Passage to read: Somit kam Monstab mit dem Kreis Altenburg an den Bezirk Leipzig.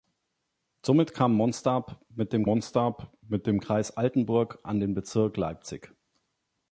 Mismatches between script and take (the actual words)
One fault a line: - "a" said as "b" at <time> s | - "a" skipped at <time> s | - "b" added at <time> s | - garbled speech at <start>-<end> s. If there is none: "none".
- "Monstab mit dem" added at 2.4 s